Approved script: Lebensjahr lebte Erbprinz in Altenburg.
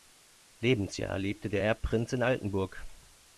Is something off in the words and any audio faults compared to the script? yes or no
yes